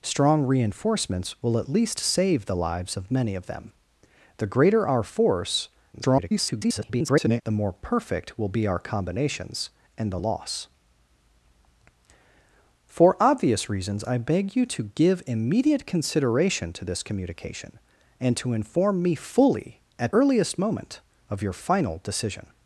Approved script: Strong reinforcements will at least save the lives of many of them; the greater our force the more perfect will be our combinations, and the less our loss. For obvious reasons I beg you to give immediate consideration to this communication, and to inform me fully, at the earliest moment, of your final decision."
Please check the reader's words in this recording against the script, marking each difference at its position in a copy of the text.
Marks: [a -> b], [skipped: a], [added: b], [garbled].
Strong reinforcements will at least save the lives of many of them; the greater our force [garbled] the more perfect will be our combinations, and the [skipped: less our] loss. For obvious reasons I beg you to give immediate consideration to this communication, and to inform me fully, at [skipped: the] earliest moment, of your final decision."